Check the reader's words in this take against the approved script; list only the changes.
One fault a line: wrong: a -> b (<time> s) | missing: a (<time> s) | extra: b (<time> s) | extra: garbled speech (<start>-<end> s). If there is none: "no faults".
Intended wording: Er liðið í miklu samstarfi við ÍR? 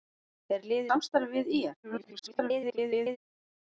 missing: í miklu (0.9 s)
extra: garbled speech (1.8-3.2 s)